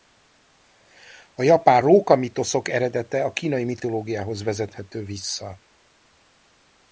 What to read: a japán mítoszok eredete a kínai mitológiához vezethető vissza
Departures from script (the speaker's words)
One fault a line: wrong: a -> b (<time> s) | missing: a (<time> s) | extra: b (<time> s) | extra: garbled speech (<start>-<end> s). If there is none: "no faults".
extra: róka (1.8 s)